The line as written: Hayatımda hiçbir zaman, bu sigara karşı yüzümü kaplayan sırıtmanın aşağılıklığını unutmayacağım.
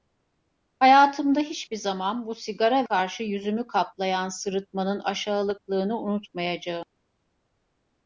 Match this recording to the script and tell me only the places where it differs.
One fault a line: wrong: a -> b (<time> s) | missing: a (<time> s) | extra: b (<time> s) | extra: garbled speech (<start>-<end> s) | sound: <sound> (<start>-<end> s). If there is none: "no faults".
no faults